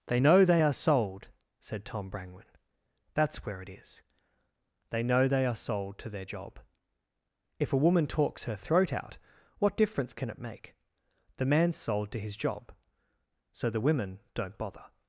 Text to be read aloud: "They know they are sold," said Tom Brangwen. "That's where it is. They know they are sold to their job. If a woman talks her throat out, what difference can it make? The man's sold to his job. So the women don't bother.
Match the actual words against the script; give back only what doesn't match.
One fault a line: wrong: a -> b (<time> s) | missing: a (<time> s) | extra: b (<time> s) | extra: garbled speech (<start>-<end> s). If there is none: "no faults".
no faults